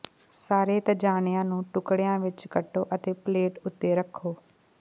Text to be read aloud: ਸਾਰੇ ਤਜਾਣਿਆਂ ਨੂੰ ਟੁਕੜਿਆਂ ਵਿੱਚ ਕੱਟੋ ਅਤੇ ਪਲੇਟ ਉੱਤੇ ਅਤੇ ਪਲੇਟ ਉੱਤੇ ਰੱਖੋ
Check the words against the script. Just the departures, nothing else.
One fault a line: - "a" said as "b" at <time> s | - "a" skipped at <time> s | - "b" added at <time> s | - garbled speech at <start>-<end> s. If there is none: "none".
- "ਅਤੇ ਪਲੇਟ ਉੱਤੇ" skipped at 3.9 s